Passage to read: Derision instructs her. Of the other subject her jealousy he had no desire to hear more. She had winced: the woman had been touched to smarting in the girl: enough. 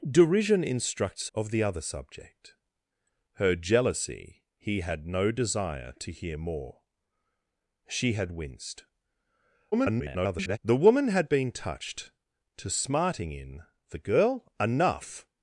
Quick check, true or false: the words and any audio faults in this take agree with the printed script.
false